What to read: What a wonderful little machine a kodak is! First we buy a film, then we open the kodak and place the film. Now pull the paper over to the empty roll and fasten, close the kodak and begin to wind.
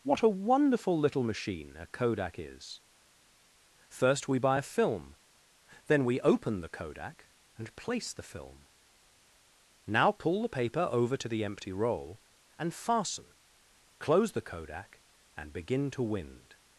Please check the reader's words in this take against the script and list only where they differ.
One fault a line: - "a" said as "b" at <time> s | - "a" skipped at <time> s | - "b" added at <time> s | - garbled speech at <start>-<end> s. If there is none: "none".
none